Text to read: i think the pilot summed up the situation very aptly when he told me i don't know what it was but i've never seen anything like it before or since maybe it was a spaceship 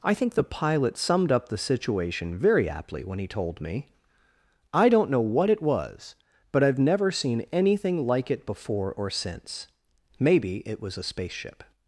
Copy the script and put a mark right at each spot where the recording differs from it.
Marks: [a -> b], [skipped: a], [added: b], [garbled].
i think the pilot summed up the situation very aptly when he told me i don't know what it was but i've never seen anything like it before or since maybe it was a spaceship